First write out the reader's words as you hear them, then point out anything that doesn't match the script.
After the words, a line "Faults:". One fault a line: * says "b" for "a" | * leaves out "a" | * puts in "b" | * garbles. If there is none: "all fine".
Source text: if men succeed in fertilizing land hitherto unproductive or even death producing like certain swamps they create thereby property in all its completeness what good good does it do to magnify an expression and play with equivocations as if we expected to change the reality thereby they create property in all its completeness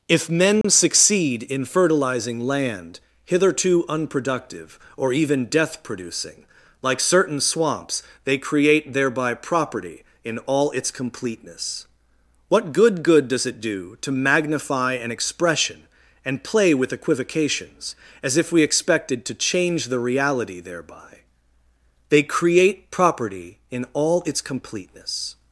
if men succeed in fertilizing land hitherto unproductive or even death producing like certain swamps they create thereby property in all its completeness what good good does it do to magnify an expression and play with equivocations as if we expected to change the reality thereby they create property in all its completeness
Faults:
all fine